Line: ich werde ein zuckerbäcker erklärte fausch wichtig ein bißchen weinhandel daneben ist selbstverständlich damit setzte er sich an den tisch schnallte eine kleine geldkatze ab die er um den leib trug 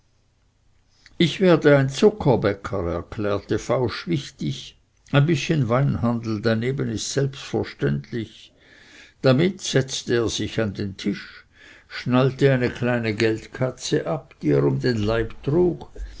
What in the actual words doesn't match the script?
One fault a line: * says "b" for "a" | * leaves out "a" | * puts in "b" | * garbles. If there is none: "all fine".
all fine